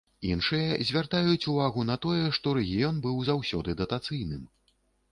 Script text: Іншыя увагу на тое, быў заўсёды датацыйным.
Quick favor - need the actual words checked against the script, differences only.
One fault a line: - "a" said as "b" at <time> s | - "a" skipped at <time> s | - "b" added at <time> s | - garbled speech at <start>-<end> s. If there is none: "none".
- "звяртаюць" added at 0.9 s
- "што рэгіён" added at 2.4 s